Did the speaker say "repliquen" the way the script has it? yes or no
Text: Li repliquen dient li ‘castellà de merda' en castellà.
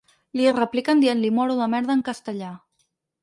yes